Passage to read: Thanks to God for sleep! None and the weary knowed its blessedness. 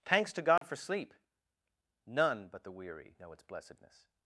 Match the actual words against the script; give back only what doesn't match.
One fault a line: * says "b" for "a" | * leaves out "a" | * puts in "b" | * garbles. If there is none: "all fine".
* says "but" for "and"
* says "know" for "knowed"